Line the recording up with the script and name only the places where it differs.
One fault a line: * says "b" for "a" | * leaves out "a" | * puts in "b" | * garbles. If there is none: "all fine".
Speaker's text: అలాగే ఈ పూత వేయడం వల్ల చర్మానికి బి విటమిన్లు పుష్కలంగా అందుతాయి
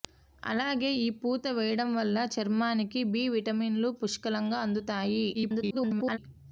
* garbles